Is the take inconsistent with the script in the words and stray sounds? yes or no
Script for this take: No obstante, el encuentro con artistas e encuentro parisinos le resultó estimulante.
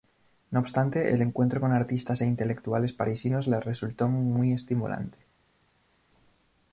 yes